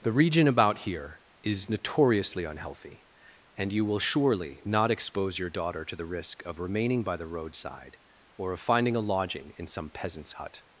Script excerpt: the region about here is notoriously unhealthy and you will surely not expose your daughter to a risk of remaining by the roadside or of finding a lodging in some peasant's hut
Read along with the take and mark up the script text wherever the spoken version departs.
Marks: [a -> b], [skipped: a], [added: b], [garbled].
the region about here is notoriously unhealthy and you will surely not expose your daughter to [a -> the] risk of remaining by the roadside or of finding a lodging in some peasant's hut